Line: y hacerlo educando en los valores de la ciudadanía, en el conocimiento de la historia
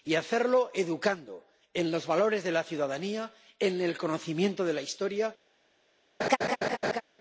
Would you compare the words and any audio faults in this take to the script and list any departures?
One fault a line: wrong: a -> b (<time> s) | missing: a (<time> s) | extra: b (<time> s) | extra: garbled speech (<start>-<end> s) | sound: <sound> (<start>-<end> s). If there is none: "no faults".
sound: laugh (6.2-7.0 s)